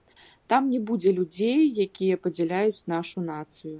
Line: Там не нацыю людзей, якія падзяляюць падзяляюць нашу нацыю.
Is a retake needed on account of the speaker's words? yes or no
yes